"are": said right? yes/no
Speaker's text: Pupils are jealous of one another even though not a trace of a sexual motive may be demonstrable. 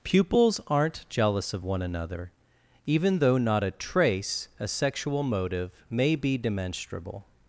no